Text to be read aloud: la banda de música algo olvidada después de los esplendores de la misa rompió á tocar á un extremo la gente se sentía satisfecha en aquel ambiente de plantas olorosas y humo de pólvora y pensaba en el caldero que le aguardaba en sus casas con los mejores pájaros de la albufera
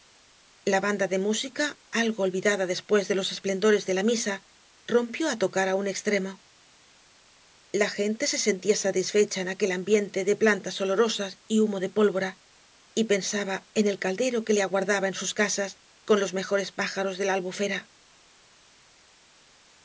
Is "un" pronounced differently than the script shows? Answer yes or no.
no